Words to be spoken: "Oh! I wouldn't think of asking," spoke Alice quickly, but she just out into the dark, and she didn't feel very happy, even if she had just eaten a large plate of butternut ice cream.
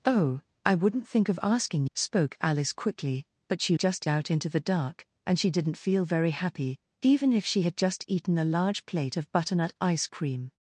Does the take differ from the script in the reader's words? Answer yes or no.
no